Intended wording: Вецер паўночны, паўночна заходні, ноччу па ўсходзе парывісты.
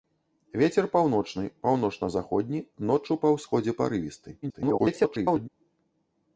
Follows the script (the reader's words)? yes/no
no